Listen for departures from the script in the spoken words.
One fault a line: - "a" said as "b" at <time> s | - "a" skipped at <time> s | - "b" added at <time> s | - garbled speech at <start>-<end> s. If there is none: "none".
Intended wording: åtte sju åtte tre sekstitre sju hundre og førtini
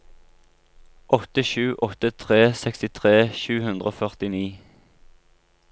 none